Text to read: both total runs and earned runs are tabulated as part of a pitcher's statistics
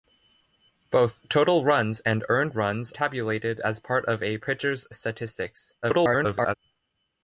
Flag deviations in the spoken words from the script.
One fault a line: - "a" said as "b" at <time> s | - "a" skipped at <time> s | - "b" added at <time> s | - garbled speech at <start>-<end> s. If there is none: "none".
- "are" skipped at 2.9 s
- garbled speech at 5.8-6.5 s